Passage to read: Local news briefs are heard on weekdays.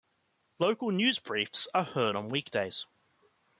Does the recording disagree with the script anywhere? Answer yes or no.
no